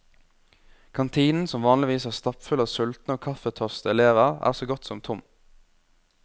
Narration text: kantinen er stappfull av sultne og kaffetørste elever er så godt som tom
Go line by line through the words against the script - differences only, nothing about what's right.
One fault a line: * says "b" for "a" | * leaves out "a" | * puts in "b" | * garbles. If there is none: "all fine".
* puts in "som vanligvis"